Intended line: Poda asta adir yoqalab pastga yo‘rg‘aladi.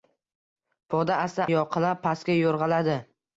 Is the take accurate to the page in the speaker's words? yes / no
no